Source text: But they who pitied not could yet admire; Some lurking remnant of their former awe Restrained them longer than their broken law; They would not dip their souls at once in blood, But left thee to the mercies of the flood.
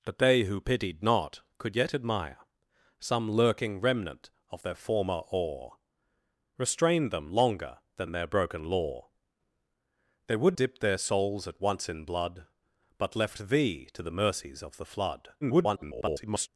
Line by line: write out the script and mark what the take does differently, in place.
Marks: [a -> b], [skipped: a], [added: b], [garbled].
But they who pitied not could yet admire; Some lurking remnant of their former awe Restrained them longer than their broken law; They would [skipped: not] dip their souls at once in blood, But left thee to the mercies of the flood. [garbled]